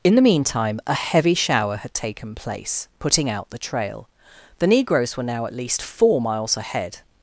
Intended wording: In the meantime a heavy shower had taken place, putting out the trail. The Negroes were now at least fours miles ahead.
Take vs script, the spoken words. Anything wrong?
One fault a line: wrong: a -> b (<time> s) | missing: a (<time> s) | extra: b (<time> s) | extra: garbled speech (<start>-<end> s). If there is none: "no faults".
wrong: fours -> four (5.8 s)